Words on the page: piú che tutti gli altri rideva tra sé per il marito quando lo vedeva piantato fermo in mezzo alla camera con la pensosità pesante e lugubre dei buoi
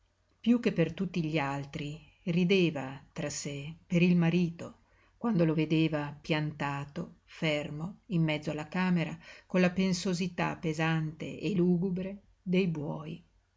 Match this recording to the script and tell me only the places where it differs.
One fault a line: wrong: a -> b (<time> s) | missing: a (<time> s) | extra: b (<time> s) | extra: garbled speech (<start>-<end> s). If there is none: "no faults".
extra: per (0.7 s)